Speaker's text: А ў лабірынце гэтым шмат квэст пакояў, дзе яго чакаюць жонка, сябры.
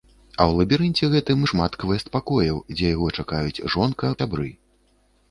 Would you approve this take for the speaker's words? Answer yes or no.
yes